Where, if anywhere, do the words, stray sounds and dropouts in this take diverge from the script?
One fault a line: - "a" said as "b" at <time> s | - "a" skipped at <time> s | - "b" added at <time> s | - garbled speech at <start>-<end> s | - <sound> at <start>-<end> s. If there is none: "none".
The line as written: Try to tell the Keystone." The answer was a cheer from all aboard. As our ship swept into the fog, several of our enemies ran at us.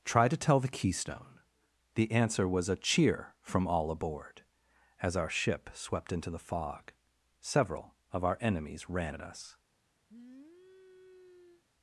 - sniff at 10.1-11.6 s